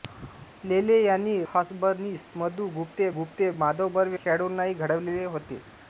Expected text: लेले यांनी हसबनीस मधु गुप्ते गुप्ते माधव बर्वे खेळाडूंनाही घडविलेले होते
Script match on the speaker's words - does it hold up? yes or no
yes